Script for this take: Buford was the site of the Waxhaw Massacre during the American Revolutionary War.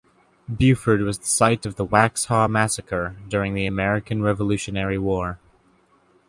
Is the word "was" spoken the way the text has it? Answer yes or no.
yes